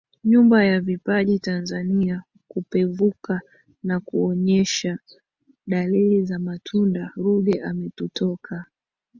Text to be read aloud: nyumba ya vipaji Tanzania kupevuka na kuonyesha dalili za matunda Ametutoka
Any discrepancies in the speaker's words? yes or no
yes